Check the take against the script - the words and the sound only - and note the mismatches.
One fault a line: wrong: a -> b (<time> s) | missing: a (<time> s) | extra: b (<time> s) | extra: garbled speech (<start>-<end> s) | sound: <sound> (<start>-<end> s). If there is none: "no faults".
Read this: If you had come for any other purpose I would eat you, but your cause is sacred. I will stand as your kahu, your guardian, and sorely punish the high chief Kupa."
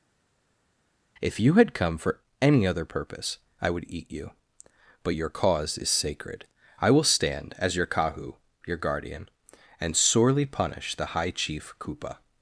no faults